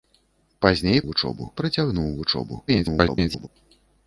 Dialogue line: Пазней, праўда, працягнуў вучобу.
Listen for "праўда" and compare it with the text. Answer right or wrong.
wrong